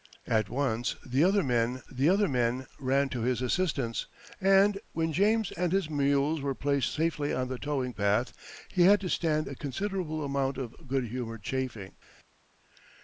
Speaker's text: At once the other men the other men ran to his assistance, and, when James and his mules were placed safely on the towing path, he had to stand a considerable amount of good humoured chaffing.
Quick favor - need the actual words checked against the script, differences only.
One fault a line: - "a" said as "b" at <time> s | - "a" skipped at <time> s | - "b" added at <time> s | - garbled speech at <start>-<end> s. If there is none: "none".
none